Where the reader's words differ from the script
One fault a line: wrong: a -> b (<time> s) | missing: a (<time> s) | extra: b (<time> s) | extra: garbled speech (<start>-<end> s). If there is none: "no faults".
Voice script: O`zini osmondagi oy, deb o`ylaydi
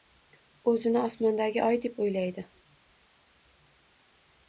no faults